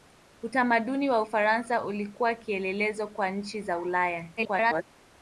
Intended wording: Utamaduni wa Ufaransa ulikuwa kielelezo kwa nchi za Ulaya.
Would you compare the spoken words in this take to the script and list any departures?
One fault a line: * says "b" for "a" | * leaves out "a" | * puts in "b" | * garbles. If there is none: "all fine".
* garbles